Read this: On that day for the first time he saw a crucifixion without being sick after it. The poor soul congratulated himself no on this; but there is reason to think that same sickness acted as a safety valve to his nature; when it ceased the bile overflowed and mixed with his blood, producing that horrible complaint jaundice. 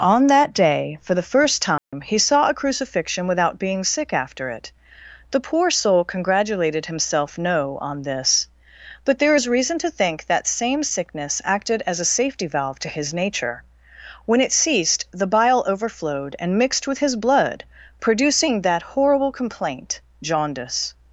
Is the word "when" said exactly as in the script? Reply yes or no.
yes